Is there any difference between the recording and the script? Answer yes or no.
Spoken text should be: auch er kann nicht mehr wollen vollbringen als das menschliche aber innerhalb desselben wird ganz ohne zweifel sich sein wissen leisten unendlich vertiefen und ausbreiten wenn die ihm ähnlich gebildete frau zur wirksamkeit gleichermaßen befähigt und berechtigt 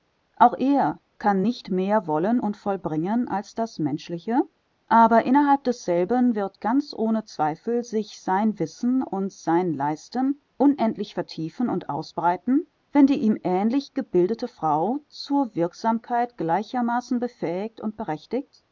yes